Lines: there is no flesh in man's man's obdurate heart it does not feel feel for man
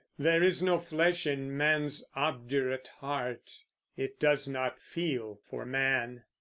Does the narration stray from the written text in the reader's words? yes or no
yes